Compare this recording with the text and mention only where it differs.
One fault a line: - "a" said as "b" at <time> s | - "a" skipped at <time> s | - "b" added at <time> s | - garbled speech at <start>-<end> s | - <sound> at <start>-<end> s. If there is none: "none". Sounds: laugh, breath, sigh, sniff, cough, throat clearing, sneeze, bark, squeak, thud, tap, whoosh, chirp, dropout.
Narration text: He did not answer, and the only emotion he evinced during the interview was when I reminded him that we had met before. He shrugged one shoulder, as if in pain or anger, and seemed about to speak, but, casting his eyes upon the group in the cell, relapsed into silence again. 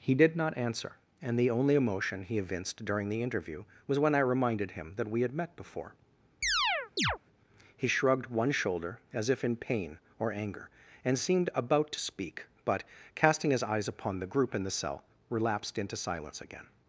- chirp at 6.4-7.2 s